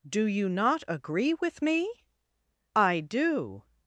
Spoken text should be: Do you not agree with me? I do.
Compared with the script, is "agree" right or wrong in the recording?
right